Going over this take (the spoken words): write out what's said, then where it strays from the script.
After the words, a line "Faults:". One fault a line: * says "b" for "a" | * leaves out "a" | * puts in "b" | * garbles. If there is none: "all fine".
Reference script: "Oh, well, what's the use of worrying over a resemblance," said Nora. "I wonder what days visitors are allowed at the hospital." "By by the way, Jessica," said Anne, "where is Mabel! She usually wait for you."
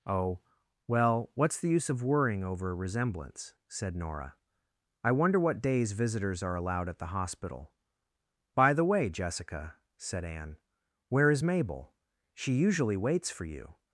"Oh, well, what's the use of worrying over a resemblance," said Nora. "I wonder what days visitors are allowed at the hospital." "By the way, Jessica," said Anne, "where is Mabel! She usually waits for you."
Faults:
* leaves out "by"
* says "waits" for "wait"